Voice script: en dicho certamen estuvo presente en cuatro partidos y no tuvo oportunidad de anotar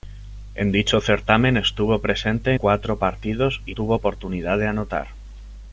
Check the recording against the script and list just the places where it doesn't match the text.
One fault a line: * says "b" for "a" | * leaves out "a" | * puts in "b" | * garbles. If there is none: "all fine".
* leaves out "en"
* leaves out "no"